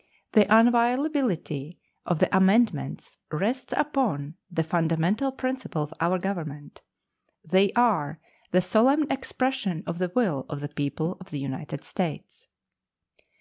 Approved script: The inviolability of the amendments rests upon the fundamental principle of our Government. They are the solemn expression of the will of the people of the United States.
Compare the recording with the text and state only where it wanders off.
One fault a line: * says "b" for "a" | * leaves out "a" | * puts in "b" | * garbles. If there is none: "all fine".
all fine